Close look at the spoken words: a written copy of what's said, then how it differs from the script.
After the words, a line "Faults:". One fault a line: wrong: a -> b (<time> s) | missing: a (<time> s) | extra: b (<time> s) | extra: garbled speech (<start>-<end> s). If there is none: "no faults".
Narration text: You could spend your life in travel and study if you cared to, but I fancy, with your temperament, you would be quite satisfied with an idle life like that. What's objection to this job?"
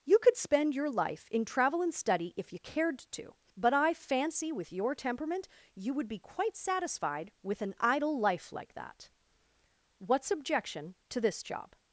You could spend your life in travel and study if you cared to, but I fancy, with your temperament, you would be quite satisfied with an idle life like that. What's objection to this job?"
Faults:
no faults